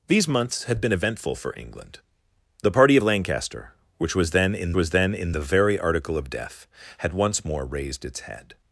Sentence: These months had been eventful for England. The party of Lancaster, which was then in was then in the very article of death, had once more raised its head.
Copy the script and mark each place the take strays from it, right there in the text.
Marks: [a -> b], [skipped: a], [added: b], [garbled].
These months had been eventful for England. The party of Lancaster, which was then in was then in the very article of death, had once more raised its head.